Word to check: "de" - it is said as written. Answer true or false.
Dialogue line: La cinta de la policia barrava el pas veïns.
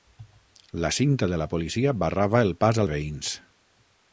true